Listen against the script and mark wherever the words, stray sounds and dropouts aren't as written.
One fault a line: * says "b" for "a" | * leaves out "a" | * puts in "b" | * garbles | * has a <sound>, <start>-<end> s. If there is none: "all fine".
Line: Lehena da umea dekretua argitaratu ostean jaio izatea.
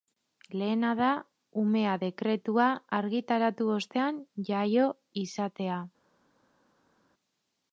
all fine